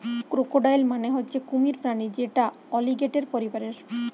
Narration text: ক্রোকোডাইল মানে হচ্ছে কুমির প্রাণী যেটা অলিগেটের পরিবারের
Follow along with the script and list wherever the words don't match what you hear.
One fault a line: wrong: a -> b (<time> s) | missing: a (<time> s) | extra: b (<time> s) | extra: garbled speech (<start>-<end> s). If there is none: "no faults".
no faults